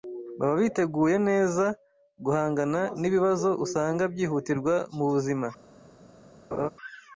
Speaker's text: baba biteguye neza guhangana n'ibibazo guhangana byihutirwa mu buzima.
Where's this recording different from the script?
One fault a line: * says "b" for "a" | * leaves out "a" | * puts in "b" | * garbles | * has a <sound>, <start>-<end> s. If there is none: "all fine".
* says "usanga" for "guhangana"
* has a laugh, 6.5-6.7 s